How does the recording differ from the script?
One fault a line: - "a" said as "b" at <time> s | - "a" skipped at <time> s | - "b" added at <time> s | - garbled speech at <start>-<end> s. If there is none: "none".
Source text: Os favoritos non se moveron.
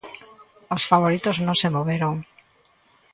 none